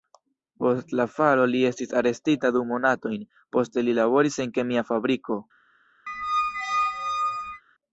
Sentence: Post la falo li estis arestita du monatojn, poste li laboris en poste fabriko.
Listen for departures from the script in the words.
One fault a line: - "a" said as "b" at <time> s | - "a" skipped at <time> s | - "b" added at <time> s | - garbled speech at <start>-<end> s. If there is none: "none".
- "poste" said as "kemia" at 4.6 s